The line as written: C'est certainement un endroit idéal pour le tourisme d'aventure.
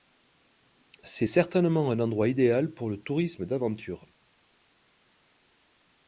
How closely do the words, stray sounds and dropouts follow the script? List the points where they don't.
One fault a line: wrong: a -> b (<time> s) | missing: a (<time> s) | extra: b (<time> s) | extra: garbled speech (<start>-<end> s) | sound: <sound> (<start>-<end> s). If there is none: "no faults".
no faults